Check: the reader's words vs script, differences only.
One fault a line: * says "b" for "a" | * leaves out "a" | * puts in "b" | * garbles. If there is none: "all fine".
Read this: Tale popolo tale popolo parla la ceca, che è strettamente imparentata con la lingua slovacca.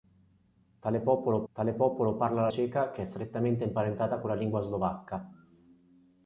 all fine